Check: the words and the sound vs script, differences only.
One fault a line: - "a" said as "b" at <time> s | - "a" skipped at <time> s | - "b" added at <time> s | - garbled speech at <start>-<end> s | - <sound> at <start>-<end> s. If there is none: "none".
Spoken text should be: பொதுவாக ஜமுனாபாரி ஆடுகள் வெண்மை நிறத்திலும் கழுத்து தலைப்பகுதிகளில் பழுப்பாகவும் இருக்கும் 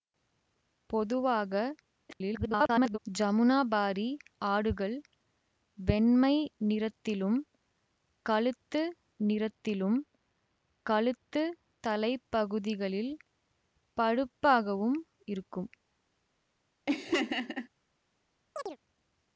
- garbled speech at 2.1-3.0 s
- "நிறத்திலும் கழுத்து" added at 9.2 s
- laugh at 16.9-17.7 s
- chirp at 18.6-18.8 s